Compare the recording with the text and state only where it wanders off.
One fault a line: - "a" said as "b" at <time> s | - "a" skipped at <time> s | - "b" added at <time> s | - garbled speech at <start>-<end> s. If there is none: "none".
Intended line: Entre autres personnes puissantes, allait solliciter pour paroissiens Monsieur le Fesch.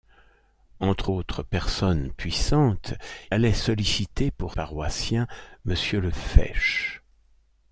none